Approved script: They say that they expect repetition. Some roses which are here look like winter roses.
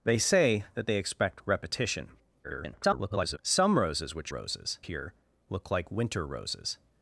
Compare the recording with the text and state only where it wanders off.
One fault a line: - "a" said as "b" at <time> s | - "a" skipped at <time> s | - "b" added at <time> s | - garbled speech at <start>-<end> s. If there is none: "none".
- garbled speech at 2.4-3.4 s
- "are" said as "roses" at 4.3 s